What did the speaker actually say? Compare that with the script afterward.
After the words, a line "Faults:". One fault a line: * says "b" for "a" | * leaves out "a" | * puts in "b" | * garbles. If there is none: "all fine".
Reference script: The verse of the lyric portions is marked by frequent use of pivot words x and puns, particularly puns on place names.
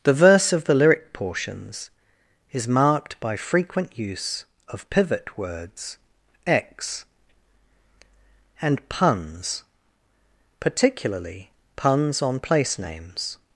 The verse of the lyric portions is marked by frequent use of pivot words x and puns, particularly puns on place names.
Faults:
all fine